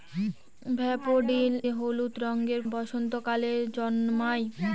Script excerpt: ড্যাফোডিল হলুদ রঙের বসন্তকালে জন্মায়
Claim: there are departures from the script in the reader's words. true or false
false